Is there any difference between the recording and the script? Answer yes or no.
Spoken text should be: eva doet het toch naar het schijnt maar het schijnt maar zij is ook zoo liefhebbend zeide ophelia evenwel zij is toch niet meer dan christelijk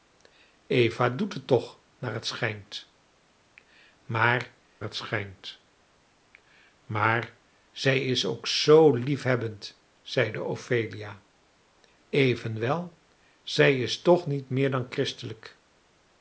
no